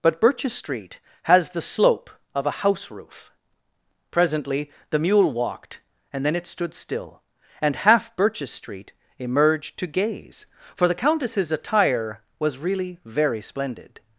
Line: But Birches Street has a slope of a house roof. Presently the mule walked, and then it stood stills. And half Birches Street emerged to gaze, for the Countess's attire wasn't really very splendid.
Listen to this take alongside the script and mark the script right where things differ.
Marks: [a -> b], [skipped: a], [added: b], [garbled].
But Birches Street has [a -> the] slope of a house roof. Presently the mule walked, and then it stood [stills. -> still] And half Birches Street emerged to gaze, for the Countess's attire [wasn't -> was] really very splendid.